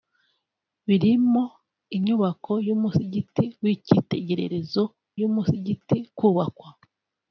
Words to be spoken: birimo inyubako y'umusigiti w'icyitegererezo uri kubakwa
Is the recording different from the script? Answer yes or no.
yes